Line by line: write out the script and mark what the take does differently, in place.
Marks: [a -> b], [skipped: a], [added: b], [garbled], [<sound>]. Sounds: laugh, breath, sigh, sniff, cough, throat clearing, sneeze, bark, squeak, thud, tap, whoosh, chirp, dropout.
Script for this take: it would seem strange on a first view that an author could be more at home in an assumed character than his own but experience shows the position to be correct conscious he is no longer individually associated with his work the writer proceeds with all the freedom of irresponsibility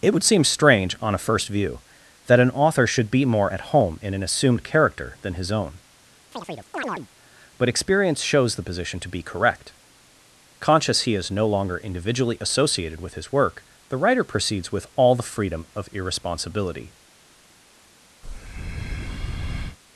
it would seem strange on a first view that an author [could -> should] be more at home in an assumed character than his own [chirp] but experience shows the position to be correct conscious he is no longer individually associated with his work the writer proceeds with all the freedom of irresponsibility [breath]